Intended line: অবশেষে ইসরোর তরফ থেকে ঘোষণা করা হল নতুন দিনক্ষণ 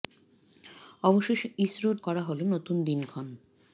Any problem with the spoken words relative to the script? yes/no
yes